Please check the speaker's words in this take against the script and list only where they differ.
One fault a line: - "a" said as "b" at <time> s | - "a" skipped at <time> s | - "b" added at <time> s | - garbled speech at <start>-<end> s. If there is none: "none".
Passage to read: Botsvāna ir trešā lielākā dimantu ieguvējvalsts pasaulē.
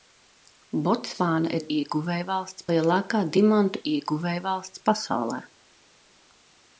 - "trešā" said as "ieguvējvalsts" at 1.8 s